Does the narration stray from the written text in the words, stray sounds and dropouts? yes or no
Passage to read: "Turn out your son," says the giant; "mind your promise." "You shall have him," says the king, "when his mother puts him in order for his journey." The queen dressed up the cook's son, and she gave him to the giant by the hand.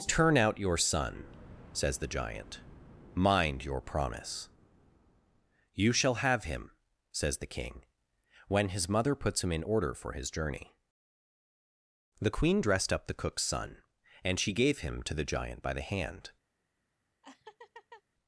yes